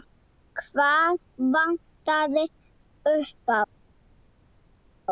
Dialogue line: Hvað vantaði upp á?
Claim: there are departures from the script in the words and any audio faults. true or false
false